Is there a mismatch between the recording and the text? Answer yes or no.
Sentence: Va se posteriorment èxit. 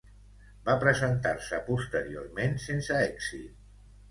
yes